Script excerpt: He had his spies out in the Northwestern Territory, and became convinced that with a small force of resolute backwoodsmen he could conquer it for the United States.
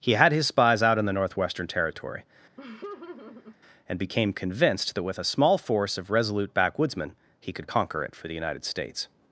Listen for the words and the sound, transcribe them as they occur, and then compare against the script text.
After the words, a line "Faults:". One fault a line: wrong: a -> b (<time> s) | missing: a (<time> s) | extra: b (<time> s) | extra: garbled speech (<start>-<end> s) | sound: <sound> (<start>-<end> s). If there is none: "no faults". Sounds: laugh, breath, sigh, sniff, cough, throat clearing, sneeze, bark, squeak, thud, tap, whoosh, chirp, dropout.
He had his spies out in the Northwestern Territory, and became convinced that with a small force of resolute backwoodsmen he could conquer it for the United States.
Faults:
sound: laugh (2.6-3.6 s)